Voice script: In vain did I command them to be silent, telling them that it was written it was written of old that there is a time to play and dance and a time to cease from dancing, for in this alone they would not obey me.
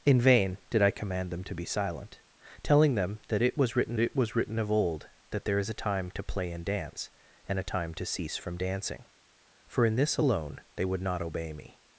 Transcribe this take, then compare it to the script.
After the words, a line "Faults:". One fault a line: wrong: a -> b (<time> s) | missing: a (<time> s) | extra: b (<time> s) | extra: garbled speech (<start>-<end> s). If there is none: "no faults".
In vain did I command them to be silent, telling them that it was written it was written of old that there is a time to play and dance and a time to cease from dancing, for in this alone they would not obey me.
Faults:
no faults